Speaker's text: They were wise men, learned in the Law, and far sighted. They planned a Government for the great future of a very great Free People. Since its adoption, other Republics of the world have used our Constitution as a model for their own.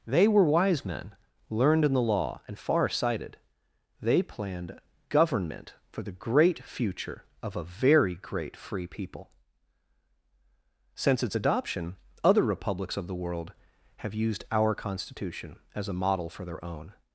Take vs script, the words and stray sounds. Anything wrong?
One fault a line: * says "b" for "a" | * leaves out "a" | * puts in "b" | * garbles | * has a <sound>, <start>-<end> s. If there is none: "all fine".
* leaves out "a"